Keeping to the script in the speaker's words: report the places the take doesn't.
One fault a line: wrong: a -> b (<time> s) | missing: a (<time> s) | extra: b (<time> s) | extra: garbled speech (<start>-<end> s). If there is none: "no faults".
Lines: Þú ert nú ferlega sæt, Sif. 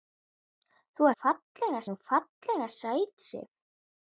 wrong: ert -> ferlega (1.2 s)